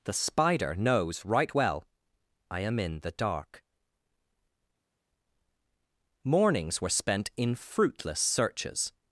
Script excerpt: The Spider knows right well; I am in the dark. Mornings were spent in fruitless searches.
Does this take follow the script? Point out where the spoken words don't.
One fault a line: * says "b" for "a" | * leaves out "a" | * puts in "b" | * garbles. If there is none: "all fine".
all fine